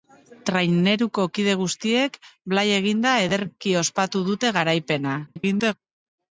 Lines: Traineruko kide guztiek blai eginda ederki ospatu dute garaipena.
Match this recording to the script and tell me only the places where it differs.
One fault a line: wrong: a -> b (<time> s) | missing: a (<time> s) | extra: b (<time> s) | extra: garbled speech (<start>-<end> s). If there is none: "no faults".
extra: garbled speech (5.3-5.7 s)